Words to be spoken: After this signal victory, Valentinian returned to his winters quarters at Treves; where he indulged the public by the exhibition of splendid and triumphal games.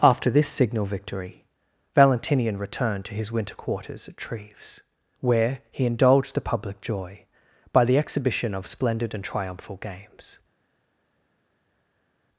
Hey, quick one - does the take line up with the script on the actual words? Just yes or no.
no